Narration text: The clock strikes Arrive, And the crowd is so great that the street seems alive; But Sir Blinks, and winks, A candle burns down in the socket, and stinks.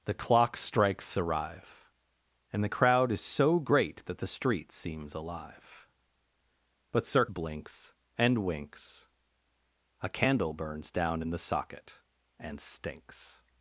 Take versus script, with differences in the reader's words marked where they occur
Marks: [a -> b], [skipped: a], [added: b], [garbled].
The clock strikes Arrive, And the crowd is so great that the street seems alive; But Sir Blinks, and winks, A candle burns down in the socket, and stinks.